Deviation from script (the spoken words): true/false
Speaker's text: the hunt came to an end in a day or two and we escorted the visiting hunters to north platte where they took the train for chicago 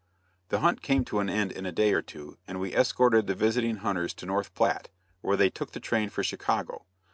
false